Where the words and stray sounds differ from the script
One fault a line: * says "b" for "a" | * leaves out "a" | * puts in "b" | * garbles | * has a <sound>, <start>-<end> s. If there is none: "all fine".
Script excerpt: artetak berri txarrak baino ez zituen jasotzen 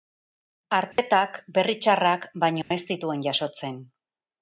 * has a dropout, 0.9-1.0 s
* has a dropout, 2.6-2.7 s